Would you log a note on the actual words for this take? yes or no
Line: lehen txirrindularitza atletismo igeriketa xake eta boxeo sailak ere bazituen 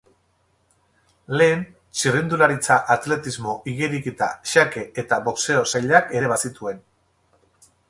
no